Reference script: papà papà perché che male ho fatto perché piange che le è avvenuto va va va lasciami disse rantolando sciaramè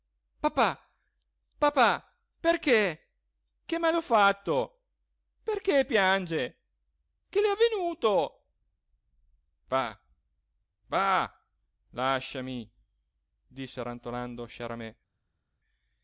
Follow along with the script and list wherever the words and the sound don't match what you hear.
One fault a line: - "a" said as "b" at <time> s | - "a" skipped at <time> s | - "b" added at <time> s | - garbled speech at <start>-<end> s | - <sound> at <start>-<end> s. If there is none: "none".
- "va" skipped at 11.5 s